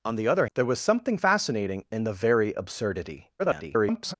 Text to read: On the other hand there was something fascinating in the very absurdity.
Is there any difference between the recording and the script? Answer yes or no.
yes